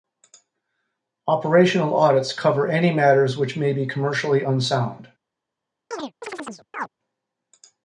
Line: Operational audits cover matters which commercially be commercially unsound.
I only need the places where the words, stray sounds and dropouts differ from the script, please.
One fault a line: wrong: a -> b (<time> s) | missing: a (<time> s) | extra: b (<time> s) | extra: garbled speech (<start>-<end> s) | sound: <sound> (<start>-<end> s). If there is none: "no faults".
extra: any (2.7 s)
wrong: commercially -> may (3.5 s)
sound: chirp (5.9-6.9 s)